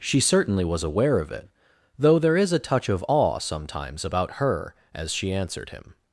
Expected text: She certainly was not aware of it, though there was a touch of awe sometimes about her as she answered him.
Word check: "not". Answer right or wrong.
wrong